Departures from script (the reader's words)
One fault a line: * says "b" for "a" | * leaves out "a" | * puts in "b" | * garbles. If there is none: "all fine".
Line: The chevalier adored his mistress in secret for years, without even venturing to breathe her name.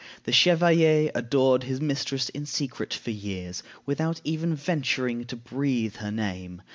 all fine